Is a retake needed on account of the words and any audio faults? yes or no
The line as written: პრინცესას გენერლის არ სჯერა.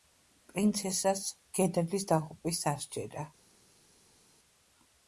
yes